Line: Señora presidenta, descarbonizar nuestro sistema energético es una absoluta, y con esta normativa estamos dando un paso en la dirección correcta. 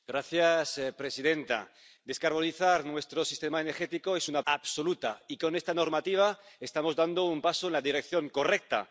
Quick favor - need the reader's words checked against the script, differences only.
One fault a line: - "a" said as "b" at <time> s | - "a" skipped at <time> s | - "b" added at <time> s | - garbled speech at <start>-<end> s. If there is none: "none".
none